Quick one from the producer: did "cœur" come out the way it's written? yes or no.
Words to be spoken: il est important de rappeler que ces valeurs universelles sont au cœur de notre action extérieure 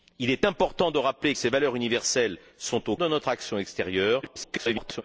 no